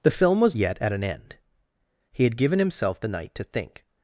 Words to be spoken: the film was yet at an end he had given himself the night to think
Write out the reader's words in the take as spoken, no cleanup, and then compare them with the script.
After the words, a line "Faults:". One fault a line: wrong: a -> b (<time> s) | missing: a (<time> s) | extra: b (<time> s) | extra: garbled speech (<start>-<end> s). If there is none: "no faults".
the film was yet at an end he had given himself the night to think
Faults:
no faults